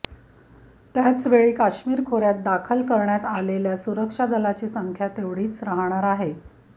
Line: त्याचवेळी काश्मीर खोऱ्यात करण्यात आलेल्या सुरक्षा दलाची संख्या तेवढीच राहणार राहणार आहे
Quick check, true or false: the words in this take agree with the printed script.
false